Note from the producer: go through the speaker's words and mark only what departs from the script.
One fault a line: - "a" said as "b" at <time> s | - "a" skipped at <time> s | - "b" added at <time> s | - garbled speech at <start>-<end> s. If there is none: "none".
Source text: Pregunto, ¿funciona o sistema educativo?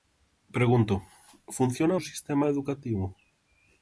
none